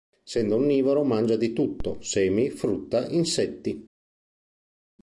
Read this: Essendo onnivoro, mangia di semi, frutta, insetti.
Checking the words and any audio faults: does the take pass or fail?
fail